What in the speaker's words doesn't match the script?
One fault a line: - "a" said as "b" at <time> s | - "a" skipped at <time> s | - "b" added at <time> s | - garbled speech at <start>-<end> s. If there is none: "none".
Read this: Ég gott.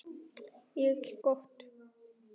none